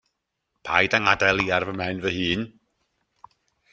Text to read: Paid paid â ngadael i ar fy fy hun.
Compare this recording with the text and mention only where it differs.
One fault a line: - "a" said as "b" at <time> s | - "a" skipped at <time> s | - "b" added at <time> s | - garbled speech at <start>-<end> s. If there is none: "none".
- "paid" skipped at 0.9 s
- "mhen" added at 1.8 s